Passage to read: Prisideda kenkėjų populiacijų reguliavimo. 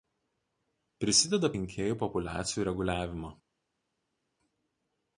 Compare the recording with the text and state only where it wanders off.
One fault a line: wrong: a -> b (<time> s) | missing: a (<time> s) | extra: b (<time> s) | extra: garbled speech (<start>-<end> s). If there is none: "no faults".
no faults